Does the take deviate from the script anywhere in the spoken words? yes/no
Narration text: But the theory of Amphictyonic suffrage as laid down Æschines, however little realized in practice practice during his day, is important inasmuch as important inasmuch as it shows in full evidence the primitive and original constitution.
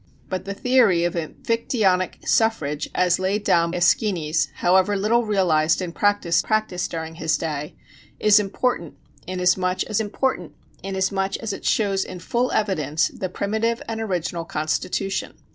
no